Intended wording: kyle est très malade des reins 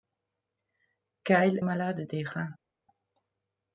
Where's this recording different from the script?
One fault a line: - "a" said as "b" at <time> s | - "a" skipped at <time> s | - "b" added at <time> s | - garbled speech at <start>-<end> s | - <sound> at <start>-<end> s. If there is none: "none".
- "est très" skipped at 1.6 s